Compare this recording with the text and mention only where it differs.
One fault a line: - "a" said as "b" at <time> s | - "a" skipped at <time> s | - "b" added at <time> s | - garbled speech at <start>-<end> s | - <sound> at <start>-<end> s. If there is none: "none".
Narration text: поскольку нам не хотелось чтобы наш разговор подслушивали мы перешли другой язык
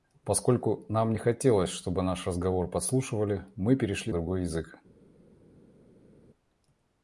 none